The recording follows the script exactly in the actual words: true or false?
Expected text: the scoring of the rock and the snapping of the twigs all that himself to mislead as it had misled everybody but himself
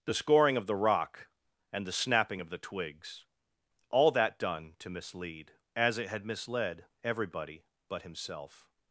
false